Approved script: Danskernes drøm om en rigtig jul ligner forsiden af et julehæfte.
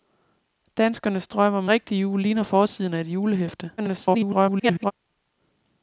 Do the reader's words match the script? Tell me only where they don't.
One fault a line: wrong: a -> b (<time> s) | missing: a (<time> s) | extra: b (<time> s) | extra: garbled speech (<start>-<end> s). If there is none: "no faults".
missing: en (1.6 s)
extra: garbled speech (3.8-4.9 s)